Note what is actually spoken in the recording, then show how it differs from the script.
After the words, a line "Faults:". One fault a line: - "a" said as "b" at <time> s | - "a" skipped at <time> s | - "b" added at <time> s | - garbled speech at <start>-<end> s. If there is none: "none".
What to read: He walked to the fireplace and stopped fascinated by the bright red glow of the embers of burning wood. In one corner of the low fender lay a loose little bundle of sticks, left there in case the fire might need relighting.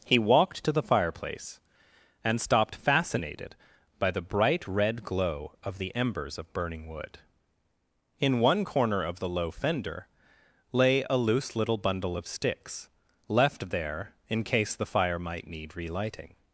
He walked to the fireplace and stopped fascinated by the bright red glow of the embers of burning wood. In one corner of the low fender lay a loose little bundle of sticks, left there in case the fire might need relighting.
Faults:
none